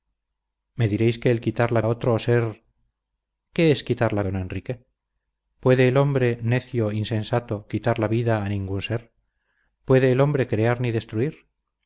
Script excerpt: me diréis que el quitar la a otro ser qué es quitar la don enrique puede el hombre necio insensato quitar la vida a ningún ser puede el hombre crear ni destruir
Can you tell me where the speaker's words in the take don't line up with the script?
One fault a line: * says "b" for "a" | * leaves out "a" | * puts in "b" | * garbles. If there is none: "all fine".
all fine